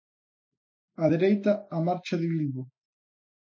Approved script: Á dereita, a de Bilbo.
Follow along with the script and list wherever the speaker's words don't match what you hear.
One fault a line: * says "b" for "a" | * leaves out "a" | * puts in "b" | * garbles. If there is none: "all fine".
* puts in "marcha"